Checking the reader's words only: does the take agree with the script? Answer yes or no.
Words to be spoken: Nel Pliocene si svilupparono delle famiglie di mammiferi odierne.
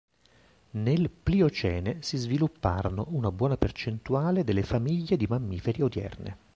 no